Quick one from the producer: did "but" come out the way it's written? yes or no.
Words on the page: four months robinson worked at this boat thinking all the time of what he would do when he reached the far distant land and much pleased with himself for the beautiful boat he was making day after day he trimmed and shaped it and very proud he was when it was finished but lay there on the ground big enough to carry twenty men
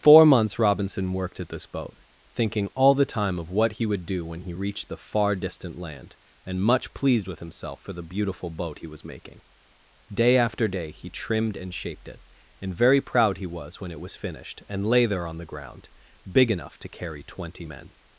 no